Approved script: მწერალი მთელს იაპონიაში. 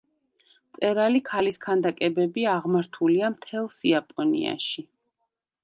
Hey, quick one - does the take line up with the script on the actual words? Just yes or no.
no